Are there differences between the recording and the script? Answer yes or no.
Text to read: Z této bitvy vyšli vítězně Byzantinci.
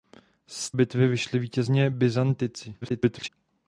yes